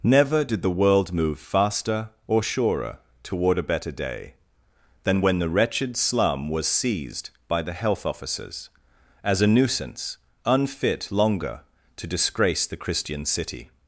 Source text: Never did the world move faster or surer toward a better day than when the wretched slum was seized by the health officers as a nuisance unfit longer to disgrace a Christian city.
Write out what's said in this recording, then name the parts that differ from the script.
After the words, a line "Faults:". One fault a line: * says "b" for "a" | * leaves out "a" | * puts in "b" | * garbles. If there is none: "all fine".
Never did the world move faster or surer toward a better day than when the wretched slum was seized by the health officers as a nuisance unfit longer to disgrace the Christian city.
Faults:
* says "the" for "a"